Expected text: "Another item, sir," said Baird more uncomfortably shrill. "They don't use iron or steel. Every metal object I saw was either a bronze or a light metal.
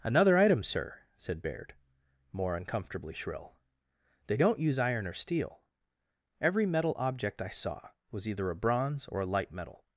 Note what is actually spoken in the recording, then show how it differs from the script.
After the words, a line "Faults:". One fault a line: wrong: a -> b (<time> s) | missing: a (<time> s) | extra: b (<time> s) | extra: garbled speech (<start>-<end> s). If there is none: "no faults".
"Another item, sir," said Baird more uncomfortably shrill. "They don't use iron or steel. Every metal object I saw was either a bronze or a light metal.
Faults:
no faults